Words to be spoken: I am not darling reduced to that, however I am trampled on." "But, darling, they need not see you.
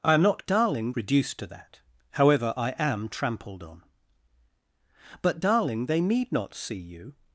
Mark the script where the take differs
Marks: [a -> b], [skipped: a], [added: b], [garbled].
I am not darling reduced to that, however I am trampled on." "But, darling, they need not see you.